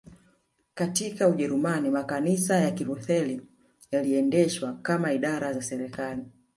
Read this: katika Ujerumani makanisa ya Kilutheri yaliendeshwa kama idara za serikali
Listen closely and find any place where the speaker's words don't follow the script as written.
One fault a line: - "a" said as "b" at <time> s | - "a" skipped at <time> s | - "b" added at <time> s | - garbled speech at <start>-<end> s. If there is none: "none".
none